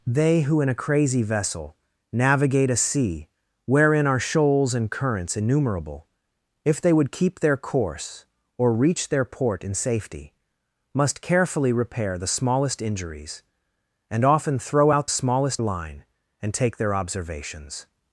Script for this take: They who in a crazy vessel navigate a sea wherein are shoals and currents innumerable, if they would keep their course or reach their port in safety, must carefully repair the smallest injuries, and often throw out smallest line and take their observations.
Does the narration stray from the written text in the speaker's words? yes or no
no